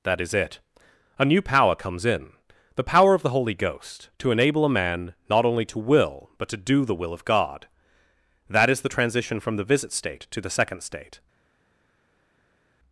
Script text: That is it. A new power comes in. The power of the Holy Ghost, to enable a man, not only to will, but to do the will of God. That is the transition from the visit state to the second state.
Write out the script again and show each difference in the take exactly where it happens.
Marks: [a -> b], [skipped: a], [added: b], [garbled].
That is it. A new power comes in. The power of the Holy Ghost, to enable a man, not only to will, but to do the will of God. That is the transition from the visit state to the second state.